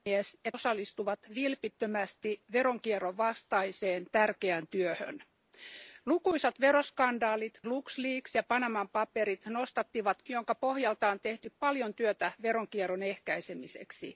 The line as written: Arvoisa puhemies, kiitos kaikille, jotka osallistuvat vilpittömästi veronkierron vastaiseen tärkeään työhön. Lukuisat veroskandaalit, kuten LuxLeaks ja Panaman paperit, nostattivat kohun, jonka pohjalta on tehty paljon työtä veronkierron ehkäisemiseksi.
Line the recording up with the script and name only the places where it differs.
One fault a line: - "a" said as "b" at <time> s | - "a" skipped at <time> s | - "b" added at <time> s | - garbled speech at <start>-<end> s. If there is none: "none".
- "kiitos kaikille jotka" skipped at 0.6 s
- "kuten" skipped at 7.6 s
- "kohun" skipped at 10.2 s